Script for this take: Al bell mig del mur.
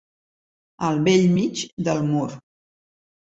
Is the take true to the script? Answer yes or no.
yes